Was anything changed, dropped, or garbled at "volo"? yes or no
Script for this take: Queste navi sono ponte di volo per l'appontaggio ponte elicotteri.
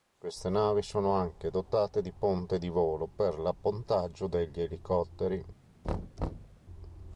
no